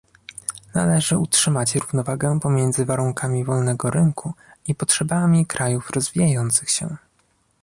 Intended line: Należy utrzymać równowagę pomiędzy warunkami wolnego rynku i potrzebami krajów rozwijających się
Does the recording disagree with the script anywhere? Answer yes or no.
no